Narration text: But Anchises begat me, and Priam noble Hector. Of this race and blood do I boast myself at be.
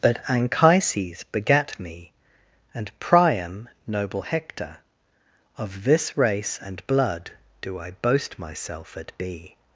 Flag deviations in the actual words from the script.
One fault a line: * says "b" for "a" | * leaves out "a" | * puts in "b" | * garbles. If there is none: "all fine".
all fine